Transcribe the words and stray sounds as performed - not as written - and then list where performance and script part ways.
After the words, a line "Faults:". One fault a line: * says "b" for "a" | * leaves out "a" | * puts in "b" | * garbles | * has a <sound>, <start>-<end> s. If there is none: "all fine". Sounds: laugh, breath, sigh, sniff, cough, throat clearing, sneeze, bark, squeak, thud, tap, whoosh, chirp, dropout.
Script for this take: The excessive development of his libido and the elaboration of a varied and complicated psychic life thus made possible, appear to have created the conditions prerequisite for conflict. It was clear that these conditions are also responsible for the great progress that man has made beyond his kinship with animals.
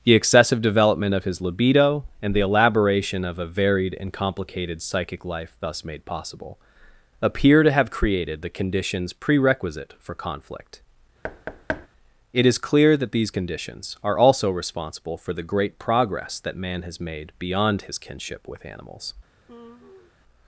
The excessive development of his libido and the elaboration of a varied and complicated psychic life thus made possible, appear to have created the conditions prerequisite for conflict. It is clear that these conditions are also responsible for the great progress that man has made beyond his kinship with animals.
Faults:
* has a thud, 11.2-11.9 s
* says "is" for "was"
* has a sigh, 19.5-20.1 s